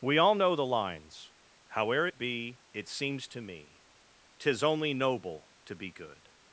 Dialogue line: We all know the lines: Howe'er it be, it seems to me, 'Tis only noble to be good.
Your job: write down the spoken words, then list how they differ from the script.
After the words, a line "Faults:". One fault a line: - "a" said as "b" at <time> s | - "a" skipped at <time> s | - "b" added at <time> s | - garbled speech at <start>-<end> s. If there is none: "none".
We all know the lines: Howe'er it be, it seems to me, 'Tis only noble to be good.
Faults:
none